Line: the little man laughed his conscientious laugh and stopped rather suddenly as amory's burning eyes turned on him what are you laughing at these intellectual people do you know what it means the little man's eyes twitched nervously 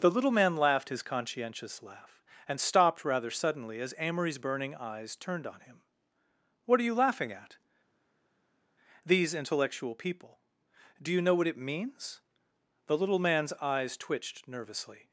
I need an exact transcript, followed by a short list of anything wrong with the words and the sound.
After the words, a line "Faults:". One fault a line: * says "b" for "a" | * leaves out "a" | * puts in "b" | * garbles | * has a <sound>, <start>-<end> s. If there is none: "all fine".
the little man laughed his conscientious laugh and stopped rather suddenly as amory's burning eyes turned on him what are you laughing at these intellectual people do you know what it means the little man's eyes twitched nervously
Faults:
all fine